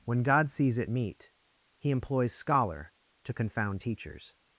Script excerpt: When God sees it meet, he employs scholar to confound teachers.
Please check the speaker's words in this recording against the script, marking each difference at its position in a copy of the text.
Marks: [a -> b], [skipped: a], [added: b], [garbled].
When God sees it meet, he employs scholar to confound teachers.